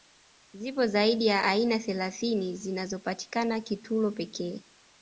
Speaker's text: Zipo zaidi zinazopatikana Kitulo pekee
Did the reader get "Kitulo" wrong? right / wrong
right